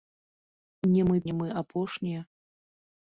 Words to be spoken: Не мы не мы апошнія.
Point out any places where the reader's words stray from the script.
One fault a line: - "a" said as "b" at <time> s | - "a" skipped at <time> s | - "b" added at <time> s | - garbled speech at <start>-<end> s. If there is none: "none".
none